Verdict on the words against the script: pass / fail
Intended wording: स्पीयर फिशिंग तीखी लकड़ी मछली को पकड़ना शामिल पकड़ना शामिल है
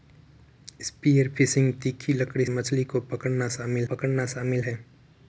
pass